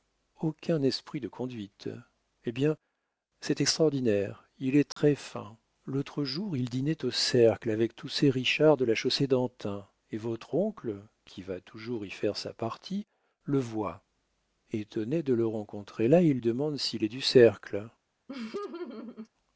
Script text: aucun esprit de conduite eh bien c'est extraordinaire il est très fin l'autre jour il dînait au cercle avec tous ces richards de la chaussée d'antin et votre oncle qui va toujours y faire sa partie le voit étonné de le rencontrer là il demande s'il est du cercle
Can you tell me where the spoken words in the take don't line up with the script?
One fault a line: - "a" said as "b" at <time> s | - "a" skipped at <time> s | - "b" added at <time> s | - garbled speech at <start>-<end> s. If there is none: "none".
none